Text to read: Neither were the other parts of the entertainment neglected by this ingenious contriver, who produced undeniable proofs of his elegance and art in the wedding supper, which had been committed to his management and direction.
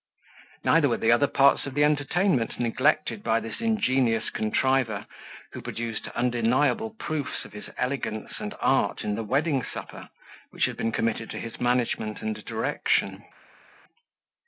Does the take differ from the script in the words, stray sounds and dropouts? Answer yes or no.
no